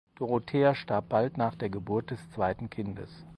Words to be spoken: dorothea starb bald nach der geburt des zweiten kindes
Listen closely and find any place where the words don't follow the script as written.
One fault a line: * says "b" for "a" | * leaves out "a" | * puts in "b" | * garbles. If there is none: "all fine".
all fine